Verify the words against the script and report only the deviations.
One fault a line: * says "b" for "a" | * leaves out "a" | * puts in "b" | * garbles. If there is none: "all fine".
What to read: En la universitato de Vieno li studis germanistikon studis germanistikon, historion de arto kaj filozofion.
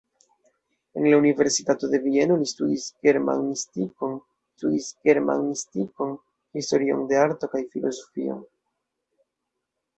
all fine